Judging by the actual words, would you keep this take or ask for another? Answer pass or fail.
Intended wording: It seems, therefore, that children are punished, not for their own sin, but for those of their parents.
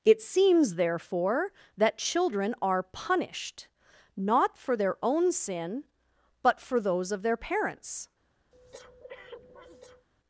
pass